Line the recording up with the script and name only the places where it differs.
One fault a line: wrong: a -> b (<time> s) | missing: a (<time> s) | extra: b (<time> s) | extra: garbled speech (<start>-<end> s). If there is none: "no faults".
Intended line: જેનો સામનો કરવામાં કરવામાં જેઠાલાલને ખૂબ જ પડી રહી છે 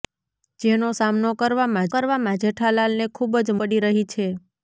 no faults